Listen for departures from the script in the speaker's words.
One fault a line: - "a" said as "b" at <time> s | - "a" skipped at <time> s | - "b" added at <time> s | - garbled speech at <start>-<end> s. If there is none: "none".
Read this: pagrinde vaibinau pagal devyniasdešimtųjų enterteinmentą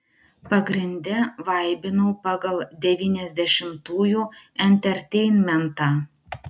none